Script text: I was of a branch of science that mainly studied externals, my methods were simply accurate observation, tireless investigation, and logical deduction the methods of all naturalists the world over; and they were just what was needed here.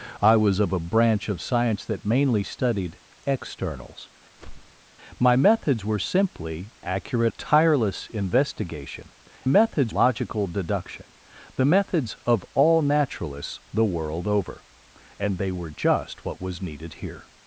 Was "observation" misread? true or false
true